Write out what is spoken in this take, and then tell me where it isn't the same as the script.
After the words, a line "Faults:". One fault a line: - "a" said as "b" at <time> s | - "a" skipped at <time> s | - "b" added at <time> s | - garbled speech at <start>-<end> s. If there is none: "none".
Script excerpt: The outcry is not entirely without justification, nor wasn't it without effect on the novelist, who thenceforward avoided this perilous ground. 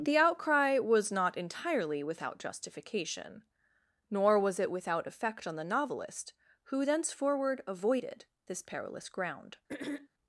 The outcry was not entirely without justification, nor was it without effect on the novelist, who thenceforward avoided this perilous ground.
Faults:
- "is" said as "was" at 0.8 s
- "wasn't" said as "was" at 4.4 s